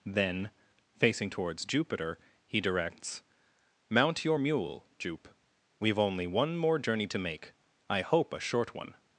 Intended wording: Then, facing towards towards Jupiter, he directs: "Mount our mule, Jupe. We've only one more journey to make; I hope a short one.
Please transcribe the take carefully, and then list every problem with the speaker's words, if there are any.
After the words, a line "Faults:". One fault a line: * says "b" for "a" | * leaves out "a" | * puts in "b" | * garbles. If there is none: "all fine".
Then, facing towards Jupiter, he directs: "Mount your mule, Jupe. We've only one more journey to make; I hope a short one.
Faults:
* leaves out "towards"
* says "your" for "our"